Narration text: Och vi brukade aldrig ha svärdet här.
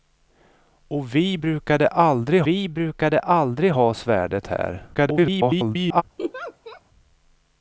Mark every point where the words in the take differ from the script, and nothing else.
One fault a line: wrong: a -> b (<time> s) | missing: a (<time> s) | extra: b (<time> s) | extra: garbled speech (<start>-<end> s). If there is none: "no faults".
extra: vi brukade aldrig (2.5 s)
extra: garbled speech (4.9-6.0 s)